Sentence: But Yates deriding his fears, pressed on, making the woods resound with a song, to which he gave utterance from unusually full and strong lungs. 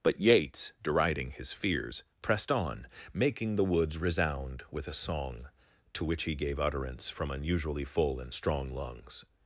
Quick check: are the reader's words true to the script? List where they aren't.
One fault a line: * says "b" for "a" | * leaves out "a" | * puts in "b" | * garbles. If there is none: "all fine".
all fine